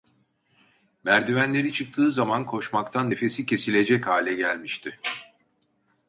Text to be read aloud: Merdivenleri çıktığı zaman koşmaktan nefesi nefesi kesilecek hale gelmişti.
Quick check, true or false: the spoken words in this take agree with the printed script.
false